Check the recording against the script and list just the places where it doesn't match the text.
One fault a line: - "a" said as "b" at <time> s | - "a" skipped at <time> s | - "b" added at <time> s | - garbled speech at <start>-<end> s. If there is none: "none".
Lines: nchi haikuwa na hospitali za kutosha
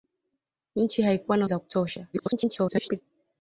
- "hospitali" skipped at 1.4 s
- garbled speech at 2.1-3.0 s